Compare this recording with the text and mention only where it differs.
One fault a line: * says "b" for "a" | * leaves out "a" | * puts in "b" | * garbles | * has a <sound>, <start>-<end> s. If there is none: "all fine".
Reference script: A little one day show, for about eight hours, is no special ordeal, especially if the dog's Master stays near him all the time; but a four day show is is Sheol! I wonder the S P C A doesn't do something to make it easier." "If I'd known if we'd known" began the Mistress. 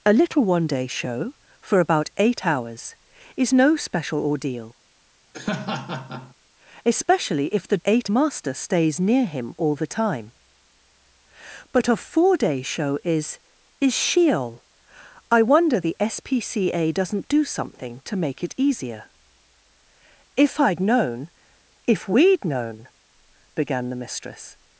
* has a laugh, 5.3-6.3 s
* says "eight" for "dog's"